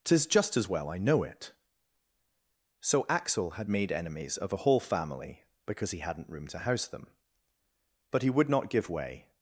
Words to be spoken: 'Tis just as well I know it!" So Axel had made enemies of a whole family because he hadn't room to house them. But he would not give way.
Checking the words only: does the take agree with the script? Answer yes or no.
yes